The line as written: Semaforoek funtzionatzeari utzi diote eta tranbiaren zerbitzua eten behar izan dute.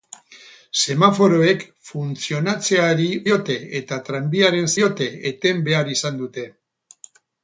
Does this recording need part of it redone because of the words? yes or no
yes